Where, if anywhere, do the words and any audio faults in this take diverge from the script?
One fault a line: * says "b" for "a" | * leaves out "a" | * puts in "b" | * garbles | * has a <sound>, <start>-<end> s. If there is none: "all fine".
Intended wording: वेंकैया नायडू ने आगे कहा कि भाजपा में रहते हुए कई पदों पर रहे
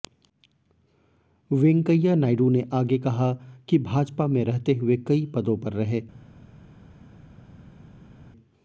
all fine